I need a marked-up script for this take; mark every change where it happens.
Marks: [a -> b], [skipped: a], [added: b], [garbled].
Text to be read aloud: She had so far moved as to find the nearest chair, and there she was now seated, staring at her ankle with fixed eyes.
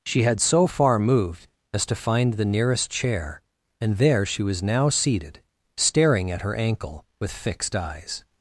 She had so far moved as to find the nearest chair, and there she was now seated, staring at her ankle with fixed eyes.